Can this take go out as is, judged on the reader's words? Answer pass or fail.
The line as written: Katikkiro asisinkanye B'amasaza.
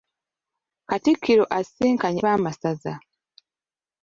pass